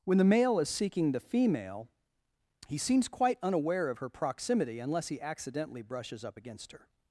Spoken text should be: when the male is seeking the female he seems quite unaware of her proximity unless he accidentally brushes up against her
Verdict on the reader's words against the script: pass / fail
pass